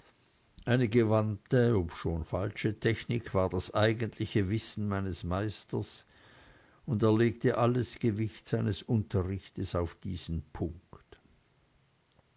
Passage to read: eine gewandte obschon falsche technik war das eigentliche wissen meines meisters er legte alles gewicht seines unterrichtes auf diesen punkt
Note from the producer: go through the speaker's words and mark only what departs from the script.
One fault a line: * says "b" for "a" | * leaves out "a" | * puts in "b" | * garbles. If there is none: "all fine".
* puts in "und"